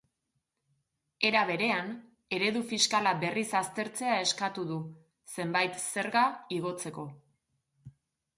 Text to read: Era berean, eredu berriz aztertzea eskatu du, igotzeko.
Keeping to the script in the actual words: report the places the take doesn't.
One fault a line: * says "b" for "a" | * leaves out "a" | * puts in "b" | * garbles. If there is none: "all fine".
* puts in "fiskala"
* puts in "zenbait zerga"